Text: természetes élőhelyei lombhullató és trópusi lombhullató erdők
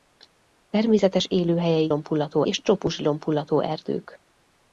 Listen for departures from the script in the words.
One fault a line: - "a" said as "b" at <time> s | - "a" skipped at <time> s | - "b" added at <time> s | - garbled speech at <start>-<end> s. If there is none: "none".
none